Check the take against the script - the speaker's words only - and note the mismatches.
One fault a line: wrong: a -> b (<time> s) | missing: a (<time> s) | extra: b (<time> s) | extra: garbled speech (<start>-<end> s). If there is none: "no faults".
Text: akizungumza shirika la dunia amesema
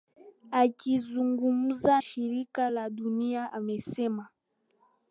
no faults